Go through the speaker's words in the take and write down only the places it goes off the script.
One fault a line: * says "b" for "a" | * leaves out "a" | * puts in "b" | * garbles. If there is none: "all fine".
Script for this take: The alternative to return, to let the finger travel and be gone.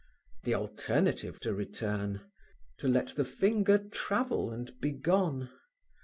all fine